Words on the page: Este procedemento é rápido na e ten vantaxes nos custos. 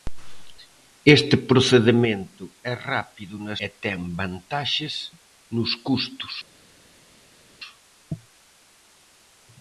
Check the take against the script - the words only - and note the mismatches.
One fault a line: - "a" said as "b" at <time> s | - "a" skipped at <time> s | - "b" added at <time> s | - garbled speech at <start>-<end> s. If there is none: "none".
none